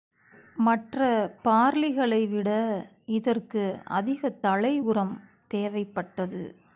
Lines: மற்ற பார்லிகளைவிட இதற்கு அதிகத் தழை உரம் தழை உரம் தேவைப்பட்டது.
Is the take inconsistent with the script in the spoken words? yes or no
yes